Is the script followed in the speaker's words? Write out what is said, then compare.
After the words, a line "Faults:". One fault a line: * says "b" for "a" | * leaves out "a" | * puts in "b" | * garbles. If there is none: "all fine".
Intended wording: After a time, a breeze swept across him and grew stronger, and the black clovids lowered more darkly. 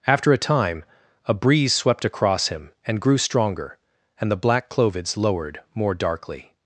After a time, a breeze swept across him and grew stronger, and the black clovids lowered more darkly.
Faults:
all fine